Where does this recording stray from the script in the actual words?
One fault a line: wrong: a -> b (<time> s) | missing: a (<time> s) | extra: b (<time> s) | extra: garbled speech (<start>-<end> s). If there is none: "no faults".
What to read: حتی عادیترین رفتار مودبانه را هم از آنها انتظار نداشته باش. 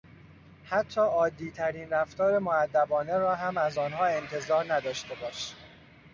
no faults